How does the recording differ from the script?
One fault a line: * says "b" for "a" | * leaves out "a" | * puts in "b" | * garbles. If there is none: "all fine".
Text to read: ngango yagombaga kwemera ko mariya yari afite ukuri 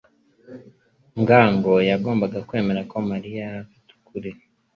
all fine